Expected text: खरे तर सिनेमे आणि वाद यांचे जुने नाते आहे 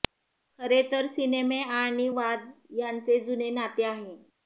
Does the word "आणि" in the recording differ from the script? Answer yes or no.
no